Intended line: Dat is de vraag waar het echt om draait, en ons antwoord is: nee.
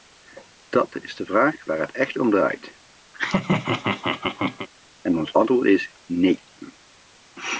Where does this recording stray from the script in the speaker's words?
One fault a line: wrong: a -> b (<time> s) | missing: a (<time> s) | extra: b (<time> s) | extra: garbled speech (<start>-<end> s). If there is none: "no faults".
no faults